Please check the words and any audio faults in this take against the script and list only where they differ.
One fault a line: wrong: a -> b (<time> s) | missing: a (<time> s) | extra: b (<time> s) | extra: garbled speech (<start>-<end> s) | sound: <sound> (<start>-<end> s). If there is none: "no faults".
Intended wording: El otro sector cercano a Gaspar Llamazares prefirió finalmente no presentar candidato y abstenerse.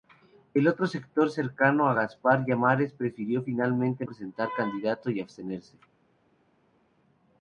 missing: no (4.1 s)